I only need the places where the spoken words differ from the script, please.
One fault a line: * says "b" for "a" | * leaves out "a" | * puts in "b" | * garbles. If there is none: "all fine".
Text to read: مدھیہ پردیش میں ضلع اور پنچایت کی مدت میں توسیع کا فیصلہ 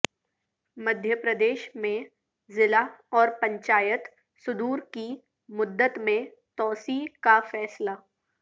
* puts in "صدور"